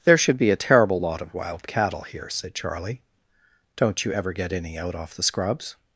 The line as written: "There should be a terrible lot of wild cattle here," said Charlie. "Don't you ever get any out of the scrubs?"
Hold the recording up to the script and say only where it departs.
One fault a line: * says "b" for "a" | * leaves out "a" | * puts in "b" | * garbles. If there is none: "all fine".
* says "off" for "of"